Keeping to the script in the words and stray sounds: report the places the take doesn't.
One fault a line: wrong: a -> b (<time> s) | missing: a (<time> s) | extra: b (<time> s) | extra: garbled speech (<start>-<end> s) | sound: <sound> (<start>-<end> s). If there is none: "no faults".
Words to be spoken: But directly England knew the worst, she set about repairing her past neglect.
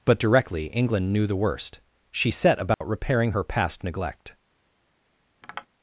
sound: dropout (2.7-2.8 s)
sound: tap (5.4-5.7 s)